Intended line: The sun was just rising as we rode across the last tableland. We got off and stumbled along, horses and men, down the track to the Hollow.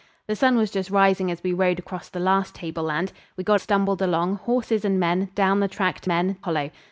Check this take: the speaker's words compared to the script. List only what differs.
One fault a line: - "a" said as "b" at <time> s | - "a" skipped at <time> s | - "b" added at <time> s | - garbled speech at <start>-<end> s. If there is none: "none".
- "off and" skipped at 3.6 s
- "the" said as "men" at 6.1 s